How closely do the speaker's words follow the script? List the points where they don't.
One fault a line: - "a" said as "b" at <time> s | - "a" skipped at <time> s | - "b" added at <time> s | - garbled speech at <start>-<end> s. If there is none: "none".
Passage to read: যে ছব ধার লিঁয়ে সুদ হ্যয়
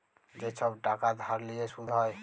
- "টাকা" added at 0.8 s